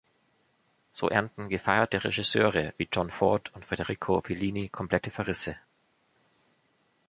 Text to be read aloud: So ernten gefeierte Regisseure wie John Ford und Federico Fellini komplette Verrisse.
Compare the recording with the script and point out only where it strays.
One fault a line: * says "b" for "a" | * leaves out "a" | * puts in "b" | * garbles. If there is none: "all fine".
all fine